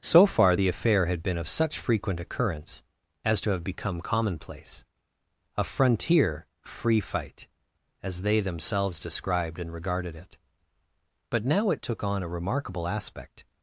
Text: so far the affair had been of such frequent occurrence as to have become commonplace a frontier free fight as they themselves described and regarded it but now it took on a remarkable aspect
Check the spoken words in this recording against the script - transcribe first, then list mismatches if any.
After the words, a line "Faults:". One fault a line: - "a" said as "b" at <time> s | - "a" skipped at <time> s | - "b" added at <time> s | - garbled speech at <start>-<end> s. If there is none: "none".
so far the affair had been of such frequent occurrence as to have become commonplace a frontier free fight as they themselves described and regarded it but now it took on a remarkable aspect
Faults:
none